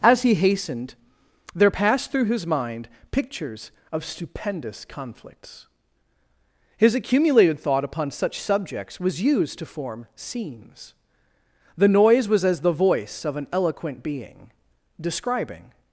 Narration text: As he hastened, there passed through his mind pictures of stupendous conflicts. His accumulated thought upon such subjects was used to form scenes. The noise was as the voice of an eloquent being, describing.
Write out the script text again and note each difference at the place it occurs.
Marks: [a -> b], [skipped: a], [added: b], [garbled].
As he hastened, there passed through his mind pictures of stupendous conflicts. His accumulated thought upon such subjects was used to form scenes. The noise was as the voice of an eloquent being, describing.